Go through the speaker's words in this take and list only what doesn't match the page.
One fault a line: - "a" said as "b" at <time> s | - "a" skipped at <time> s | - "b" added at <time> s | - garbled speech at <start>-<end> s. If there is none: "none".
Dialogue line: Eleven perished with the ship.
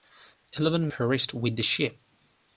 none